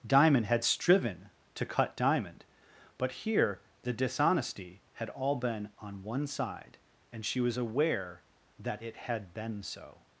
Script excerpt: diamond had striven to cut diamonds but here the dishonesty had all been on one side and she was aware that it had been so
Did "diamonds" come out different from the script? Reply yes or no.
yes